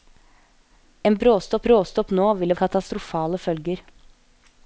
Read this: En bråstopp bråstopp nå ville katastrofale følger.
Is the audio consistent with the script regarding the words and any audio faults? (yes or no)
yes